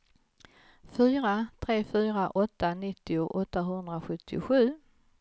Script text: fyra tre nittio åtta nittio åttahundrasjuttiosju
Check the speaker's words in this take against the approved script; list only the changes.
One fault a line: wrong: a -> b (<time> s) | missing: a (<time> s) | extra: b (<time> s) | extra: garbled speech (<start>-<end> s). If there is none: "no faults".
wrong: nittio -> fyra (1.9 s)